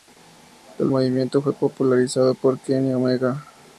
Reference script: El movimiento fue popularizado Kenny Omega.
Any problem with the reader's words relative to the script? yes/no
yes